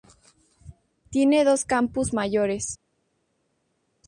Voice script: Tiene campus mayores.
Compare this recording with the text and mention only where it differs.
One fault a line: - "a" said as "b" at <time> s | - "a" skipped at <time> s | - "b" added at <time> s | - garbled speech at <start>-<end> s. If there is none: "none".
- "dos" added at 1.4 s